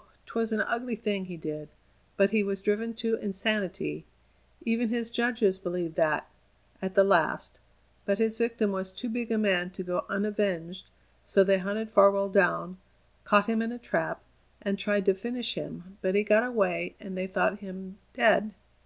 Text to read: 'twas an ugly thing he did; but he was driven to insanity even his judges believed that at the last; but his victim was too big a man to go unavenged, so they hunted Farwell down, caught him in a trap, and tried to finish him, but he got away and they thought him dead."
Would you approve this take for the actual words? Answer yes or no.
yes